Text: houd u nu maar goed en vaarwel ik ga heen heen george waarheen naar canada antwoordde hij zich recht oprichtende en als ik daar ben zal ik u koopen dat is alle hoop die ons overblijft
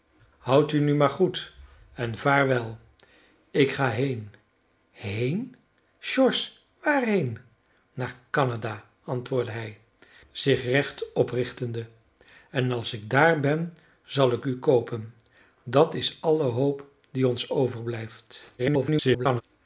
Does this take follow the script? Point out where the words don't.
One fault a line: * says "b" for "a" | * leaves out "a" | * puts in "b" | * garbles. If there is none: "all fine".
* garbles